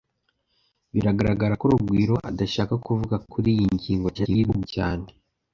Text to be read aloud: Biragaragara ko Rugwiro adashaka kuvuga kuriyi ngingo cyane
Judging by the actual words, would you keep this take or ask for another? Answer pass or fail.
fail